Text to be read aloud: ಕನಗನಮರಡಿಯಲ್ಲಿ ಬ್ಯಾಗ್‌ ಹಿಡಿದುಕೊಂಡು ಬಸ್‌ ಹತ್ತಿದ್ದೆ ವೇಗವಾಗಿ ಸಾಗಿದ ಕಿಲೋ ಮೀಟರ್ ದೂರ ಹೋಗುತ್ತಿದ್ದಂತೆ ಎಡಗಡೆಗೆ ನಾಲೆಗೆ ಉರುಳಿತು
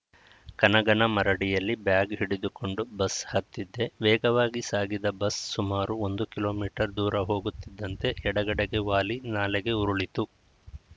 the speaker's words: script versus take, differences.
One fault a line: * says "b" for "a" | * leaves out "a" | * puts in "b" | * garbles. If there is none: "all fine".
* puts in "ಬಸ್ ಸುಮಾರು ಒಂದು"
* puts in "ವಾಲಿ"